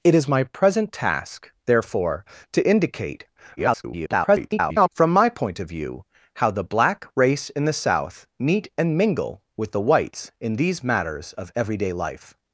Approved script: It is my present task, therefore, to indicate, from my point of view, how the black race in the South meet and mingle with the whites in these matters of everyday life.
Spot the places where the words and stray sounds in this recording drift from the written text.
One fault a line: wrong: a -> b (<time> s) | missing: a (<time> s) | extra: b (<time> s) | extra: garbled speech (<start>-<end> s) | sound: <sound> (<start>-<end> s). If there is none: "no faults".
extra: garbled speech (3.6-4.9 s)